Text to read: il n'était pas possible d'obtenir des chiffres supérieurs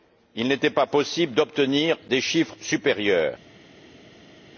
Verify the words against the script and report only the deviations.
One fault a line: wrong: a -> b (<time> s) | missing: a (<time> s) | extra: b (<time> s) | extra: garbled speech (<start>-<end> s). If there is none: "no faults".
no faults